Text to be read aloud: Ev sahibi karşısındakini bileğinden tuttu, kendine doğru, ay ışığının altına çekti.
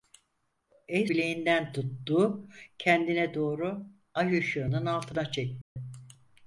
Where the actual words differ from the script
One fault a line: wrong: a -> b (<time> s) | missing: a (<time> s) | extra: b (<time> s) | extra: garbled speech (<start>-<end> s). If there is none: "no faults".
missing: sahibi karşısındakini (1.1 s)